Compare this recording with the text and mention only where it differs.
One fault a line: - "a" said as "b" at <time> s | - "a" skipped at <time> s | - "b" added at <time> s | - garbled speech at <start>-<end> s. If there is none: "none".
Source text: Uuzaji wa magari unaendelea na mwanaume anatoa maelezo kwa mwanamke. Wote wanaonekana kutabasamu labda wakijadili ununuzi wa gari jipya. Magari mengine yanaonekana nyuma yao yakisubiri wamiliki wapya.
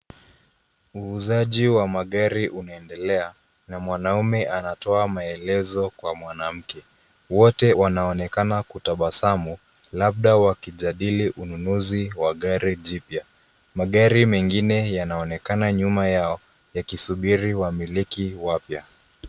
none